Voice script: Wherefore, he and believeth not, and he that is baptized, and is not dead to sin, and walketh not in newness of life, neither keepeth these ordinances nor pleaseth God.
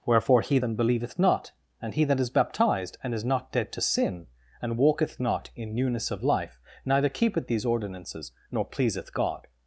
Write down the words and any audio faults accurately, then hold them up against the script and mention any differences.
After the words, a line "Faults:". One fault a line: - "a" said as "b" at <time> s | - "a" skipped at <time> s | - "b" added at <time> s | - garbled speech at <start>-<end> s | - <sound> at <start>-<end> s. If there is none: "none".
Wherefore, he and believeth not, and he that is baptized, and is not dead to sin, and walketh not in newness of life, neither keepeth these ordinances nor pleaseth God.
Faults:
none